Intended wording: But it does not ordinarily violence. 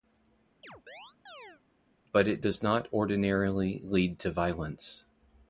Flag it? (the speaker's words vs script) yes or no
yes